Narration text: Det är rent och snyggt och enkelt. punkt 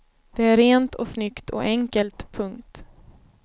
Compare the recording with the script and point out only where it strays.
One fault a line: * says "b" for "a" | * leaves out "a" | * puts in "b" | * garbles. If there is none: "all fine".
all fine